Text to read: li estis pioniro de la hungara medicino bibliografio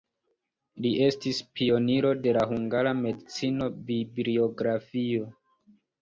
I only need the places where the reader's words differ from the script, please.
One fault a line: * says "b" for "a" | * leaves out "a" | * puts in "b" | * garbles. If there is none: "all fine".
all fine